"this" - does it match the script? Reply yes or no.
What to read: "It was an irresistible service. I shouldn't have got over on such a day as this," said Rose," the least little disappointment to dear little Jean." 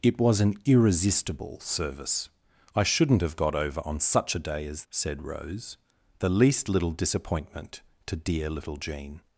no